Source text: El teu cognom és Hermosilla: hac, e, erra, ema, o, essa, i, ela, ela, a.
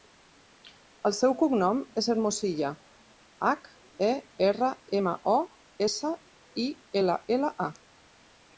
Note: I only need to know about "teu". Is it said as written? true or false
false